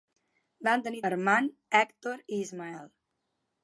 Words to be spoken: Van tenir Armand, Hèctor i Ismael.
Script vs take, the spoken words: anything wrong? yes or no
no